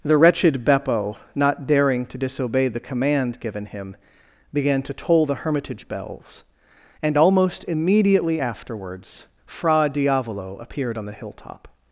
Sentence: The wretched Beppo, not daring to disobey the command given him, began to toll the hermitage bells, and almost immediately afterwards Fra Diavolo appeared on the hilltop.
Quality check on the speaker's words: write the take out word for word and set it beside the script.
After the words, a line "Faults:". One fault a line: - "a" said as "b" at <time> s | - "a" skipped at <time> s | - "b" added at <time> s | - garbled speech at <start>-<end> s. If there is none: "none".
The wretched Beppo, not daring to disobey the command given him, began to toll the hermitage bells, and almost immediately afterwards Fra Diavolo appeared on the hilltop.
Faults:
none